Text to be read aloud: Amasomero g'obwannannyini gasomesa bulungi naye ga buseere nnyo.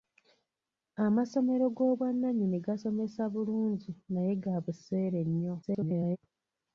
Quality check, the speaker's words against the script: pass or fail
fail